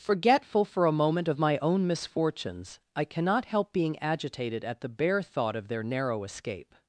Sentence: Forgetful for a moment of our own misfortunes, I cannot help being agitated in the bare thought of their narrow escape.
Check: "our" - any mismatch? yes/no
yes